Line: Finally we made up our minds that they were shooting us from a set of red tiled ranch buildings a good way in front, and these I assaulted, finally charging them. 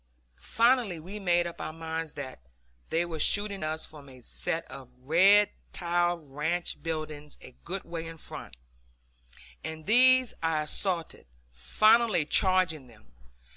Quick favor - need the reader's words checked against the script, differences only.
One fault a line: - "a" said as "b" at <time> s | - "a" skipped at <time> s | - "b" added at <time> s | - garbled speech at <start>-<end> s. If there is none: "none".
none